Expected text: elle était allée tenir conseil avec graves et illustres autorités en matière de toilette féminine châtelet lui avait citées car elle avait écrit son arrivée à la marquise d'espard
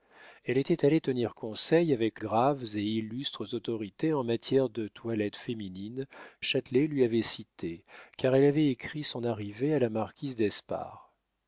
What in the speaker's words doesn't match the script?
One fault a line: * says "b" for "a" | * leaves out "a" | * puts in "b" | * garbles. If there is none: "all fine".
all fine